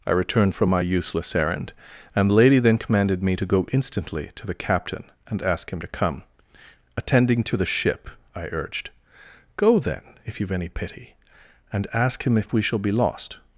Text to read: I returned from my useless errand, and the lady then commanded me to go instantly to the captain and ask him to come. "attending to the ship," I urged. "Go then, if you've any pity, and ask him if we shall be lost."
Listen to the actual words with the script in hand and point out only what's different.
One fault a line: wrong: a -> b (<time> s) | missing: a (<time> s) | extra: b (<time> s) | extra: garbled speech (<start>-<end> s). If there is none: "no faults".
no faults